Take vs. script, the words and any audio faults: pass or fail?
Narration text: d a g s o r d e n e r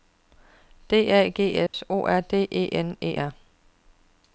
fail